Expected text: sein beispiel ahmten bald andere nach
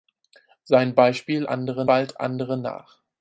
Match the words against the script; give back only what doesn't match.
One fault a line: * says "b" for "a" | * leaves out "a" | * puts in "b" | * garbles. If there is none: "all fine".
* says "andere" for "ahmten"